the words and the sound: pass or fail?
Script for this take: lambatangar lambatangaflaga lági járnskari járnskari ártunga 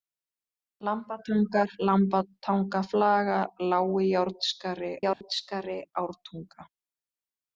fail